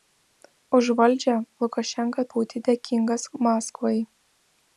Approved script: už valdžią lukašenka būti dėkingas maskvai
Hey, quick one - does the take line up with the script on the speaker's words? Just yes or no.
yes